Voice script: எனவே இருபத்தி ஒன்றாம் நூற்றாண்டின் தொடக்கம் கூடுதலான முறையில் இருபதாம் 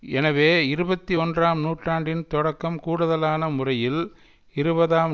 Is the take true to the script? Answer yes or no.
yes